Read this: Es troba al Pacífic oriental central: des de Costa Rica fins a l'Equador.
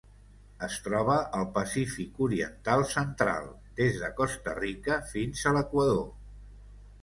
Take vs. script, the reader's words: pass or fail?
pass